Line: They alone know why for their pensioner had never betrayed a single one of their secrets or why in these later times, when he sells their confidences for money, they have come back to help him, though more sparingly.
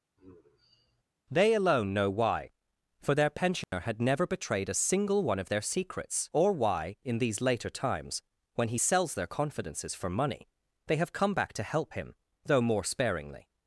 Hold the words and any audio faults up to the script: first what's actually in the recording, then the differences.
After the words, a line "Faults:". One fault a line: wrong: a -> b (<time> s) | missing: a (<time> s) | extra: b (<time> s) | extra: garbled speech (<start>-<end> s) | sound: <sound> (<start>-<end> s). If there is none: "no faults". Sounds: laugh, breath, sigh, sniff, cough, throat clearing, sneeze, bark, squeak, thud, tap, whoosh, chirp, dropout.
They alone know why for their pensioner had never betrayed a single one of their secrets or why in these later times, when he sells their confidences for money, they have come back to help him, though more sparingly.
Faults:
sound: sigh (0.2-1.0 s)
sound: dropout (3.6-3.7 s)